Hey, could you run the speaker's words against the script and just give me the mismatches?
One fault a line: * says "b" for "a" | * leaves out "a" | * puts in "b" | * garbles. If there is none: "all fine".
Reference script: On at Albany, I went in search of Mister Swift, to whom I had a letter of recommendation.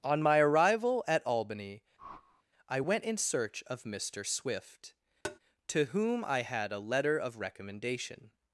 * puts in "my arrival"